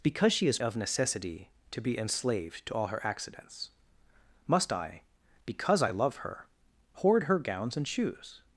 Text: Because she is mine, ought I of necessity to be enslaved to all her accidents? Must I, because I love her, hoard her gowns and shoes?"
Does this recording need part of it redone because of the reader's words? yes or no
yes